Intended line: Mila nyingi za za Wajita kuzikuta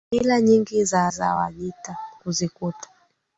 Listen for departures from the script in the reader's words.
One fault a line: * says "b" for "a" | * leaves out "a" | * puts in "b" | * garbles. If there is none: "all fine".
all fine